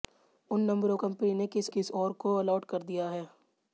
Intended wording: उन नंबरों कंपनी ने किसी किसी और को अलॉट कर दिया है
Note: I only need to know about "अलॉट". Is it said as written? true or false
true